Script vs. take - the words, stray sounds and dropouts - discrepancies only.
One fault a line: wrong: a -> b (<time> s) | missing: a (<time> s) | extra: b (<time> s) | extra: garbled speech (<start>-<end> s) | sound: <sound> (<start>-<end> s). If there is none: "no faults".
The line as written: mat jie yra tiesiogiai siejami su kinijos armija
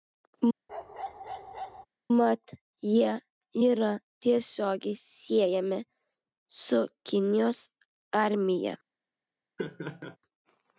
sound: bark (0.7-1.9 s)
sound: laugh (9.6-10.2 s)